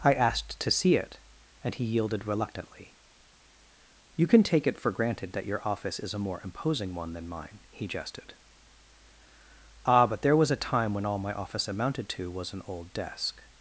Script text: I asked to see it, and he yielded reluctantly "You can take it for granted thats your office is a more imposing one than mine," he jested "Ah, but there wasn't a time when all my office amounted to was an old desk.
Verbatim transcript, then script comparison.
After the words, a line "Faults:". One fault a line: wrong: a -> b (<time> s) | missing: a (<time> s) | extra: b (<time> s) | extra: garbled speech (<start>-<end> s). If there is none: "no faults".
I asked to see it, and he yielded reluctantly "You can take it for granted that your office is a more imposing one than mine," he jested "Ah, but there was a time when all my office amounted to was an old desk.
Faults:
wrong: thats -> that (5.3 s)
wrong: wasn't -> was (10.4 s)